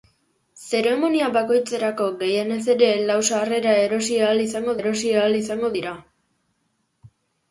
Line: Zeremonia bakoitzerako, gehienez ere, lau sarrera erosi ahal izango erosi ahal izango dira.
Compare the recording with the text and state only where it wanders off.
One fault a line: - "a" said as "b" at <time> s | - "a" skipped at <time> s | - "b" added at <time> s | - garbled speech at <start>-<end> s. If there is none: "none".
none